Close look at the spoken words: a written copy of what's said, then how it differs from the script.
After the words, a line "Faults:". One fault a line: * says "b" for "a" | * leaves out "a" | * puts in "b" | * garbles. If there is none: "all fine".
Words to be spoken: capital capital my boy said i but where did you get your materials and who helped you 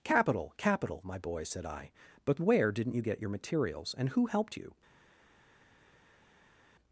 capital capital my boy said i but where didn't you get your materials and who helped you
Faults:
* says "didn't" for "did"